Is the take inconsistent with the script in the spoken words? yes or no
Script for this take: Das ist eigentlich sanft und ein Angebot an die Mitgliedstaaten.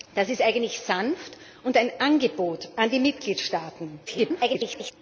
yes